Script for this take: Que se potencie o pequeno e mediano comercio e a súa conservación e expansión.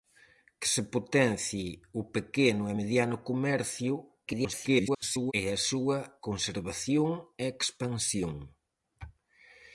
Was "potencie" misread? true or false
false